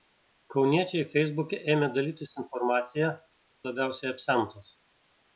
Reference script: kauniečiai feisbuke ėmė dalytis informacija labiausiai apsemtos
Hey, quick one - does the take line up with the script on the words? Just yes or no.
yes